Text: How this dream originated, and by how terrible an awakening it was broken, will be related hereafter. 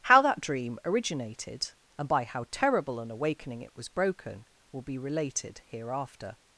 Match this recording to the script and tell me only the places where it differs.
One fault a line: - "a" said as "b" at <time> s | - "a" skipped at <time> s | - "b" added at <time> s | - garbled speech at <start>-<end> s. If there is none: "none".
- "this" said as "that" at 0.2 s